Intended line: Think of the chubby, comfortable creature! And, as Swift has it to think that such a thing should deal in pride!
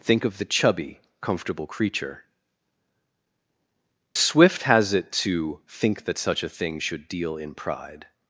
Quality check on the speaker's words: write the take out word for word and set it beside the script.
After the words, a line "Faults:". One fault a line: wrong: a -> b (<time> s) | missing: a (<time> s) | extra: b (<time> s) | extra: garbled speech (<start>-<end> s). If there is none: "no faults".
Think of the chubby, comfortable creature! Swift has it to think that such a thing should deal in pride!
Faults:
missing: And as (2.2 s)